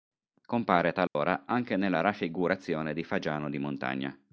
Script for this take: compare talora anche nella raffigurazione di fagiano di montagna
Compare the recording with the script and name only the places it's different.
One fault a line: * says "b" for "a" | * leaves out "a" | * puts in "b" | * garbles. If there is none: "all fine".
all fine